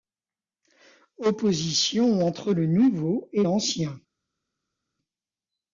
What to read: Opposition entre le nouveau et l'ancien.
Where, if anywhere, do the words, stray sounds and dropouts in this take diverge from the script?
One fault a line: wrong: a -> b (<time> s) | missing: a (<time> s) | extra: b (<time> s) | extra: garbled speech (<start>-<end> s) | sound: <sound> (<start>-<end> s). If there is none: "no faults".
no faults